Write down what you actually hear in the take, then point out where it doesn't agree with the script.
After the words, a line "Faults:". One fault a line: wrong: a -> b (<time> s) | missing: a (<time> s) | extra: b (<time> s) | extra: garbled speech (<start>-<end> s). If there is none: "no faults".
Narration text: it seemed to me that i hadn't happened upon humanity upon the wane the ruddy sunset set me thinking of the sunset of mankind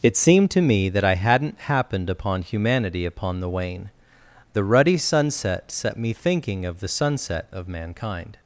it seemed to me that i hadn't happened upon humanity upon the wane the ruddy sunset set me thinking of the sunset of mankind
Faults:
no faults